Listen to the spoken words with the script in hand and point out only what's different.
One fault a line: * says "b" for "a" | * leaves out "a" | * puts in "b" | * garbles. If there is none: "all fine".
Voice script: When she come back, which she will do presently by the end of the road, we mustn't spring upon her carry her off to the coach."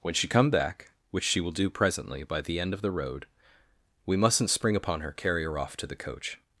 all fine